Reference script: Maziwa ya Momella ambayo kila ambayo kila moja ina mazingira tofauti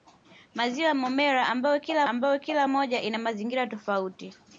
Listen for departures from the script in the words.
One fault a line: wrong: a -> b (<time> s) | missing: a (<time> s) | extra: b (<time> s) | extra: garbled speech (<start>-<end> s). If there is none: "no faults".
no faults